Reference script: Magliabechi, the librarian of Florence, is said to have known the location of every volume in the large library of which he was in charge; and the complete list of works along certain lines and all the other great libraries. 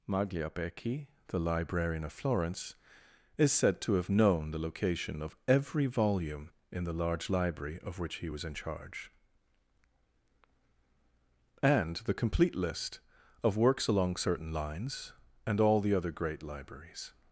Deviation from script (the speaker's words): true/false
false